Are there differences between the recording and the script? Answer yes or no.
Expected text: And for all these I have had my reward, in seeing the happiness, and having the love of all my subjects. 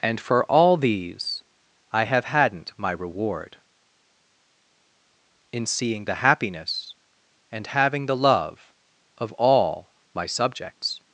yes